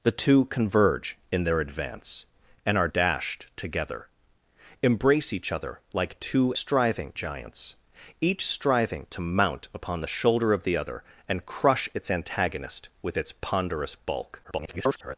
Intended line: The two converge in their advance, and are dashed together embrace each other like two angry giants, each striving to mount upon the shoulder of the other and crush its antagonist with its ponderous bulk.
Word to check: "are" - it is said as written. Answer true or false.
true